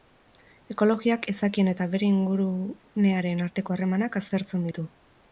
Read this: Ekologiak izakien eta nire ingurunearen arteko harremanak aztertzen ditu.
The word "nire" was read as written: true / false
false